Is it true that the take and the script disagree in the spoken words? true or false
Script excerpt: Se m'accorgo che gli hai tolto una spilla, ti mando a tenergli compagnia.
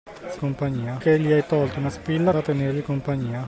true